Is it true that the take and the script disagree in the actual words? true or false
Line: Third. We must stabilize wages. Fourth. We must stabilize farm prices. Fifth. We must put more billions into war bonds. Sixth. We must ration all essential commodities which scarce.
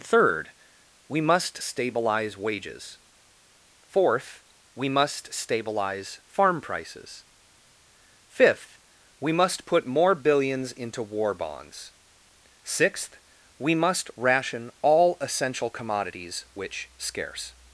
false